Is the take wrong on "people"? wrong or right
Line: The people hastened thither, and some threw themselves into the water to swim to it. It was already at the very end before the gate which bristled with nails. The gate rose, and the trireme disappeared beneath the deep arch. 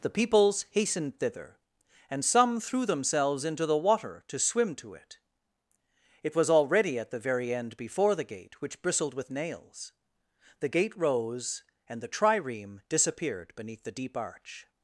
wrong